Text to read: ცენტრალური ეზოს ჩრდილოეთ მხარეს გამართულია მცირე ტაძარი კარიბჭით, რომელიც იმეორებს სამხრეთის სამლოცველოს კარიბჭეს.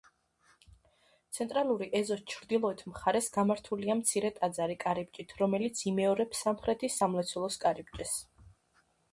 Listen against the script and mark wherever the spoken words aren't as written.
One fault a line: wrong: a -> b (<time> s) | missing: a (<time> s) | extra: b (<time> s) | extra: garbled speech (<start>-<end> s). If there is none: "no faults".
no faults